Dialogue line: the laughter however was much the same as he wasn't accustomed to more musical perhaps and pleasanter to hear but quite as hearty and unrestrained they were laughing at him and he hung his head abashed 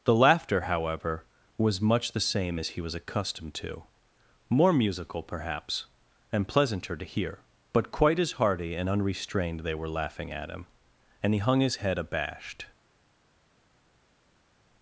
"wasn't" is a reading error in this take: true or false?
true